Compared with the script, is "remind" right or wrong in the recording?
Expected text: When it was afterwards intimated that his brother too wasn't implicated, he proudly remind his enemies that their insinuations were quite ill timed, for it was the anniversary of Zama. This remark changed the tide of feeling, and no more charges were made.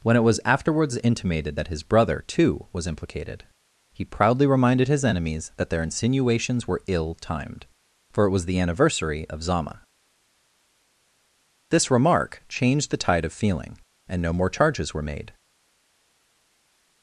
wrong